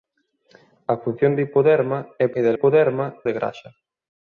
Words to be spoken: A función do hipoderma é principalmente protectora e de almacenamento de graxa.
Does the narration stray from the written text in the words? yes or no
yes